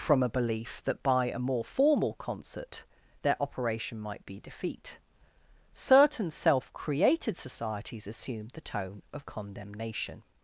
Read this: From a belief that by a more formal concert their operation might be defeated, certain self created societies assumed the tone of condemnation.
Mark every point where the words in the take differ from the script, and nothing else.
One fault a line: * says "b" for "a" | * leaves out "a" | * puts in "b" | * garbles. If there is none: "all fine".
* says "defeat" for "defeated"